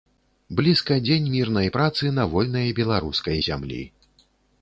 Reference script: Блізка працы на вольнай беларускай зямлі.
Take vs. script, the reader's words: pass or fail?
fail